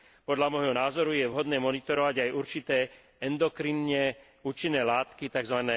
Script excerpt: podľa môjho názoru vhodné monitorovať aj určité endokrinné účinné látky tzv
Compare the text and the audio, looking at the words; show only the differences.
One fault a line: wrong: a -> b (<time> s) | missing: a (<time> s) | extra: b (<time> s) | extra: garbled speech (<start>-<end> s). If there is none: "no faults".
extra: je (1.1 s)